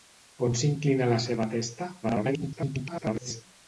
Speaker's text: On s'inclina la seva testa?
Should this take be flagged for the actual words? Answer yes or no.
yes